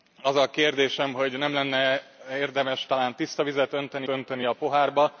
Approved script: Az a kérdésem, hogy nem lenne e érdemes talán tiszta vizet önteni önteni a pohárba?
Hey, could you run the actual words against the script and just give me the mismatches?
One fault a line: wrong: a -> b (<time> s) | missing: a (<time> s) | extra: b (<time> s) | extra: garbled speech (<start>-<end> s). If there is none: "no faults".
no faults